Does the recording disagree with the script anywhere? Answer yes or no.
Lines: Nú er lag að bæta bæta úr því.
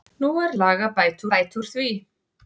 no